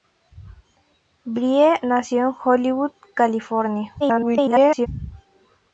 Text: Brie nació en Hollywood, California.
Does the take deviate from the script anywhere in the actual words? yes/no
yes